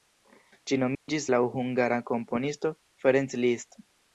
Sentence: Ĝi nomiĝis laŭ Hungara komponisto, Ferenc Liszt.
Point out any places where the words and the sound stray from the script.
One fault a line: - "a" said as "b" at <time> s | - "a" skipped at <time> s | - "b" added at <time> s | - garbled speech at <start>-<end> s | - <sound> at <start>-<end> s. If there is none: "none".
- dropout at 0.9-1.1 s